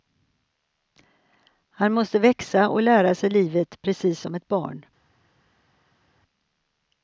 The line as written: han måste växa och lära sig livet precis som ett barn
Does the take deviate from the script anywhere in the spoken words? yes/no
no